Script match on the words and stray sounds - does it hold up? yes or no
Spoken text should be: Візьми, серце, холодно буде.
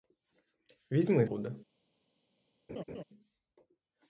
no